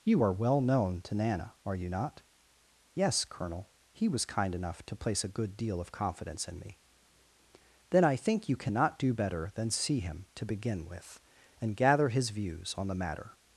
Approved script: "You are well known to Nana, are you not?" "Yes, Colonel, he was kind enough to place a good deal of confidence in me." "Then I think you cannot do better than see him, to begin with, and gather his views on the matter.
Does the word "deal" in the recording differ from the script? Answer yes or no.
no